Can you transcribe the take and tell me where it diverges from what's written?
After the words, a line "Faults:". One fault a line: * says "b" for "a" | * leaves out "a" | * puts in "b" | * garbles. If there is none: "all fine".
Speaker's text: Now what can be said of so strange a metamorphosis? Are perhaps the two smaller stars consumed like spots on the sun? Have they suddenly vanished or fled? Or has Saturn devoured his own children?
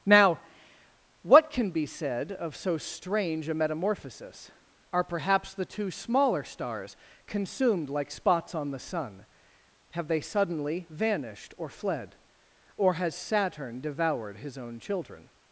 Now what can be said of so strange a metamorphosis? Are perhaps the two smaller stars consumed like spots on the sun? Have they suddenly vanished or fled? Or has Saturn devoured his own children?
Faults:
all fine